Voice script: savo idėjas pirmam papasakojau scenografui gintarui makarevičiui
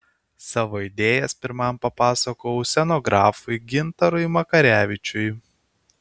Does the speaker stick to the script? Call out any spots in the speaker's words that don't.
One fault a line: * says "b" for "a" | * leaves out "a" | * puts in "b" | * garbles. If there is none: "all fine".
all fine